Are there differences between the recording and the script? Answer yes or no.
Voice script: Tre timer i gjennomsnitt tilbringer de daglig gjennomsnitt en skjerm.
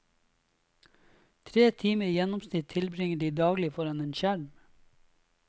yes